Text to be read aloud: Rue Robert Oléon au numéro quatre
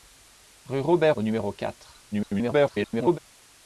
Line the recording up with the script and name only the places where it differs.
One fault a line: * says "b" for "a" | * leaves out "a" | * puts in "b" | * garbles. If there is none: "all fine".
* leaves out "Oléon"
* garbles